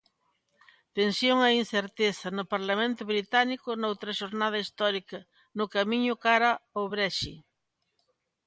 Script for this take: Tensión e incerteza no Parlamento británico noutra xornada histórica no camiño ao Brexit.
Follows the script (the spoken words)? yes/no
no